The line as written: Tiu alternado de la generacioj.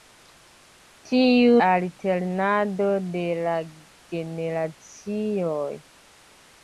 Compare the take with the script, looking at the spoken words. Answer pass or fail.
pass